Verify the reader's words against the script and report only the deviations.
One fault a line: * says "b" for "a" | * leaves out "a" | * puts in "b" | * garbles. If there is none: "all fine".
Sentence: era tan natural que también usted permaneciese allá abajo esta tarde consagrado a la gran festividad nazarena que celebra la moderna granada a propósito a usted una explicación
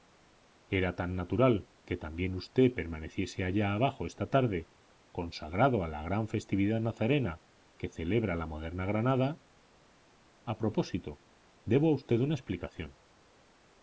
* puts in "debo"